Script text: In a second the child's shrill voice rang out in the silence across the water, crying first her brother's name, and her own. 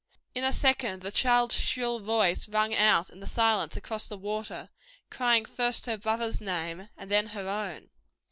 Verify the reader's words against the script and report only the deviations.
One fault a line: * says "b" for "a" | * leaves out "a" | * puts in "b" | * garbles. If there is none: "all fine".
* puts in "then"